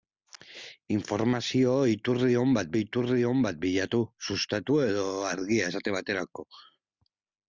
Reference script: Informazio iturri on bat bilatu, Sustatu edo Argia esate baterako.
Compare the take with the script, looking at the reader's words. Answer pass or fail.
fail